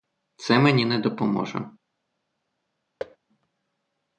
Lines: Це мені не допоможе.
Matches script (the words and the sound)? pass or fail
fail